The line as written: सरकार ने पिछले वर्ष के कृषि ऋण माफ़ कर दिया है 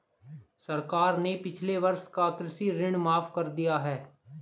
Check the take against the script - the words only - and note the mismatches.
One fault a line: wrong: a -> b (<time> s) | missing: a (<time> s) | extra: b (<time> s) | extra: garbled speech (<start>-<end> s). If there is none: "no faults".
wrong: के -> का (2.1 s)